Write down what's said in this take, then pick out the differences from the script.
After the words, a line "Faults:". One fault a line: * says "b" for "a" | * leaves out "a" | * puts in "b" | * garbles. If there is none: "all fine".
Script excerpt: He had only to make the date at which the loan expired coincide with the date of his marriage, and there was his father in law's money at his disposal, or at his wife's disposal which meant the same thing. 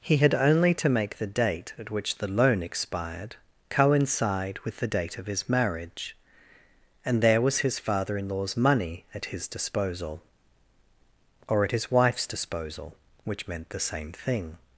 He had only to make the date at which the loan expired coincide with the date of his marriage, and there was his father in law's money at his disposal, or at his wife's disposal which meant the same thing.
Faults:
all fine